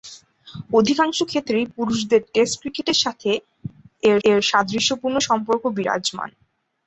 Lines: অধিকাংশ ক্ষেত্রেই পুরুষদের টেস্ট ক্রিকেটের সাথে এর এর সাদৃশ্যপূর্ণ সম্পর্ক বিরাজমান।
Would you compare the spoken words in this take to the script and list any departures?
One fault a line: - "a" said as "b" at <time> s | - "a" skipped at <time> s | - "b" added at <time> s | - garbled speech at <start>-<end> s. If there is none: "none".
none